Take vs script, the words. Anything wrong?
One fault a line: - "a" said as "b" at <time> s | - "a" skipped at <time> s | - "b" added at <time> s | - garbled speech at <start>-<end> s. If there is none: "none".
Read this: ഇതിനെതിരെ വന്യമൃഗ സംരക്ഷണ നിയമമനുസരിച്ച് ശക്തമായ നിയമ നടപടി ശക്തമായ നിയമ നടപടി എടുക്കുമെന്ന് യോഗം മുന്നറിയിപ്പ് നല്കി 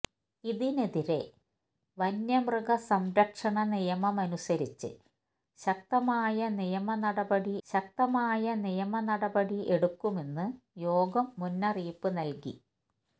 none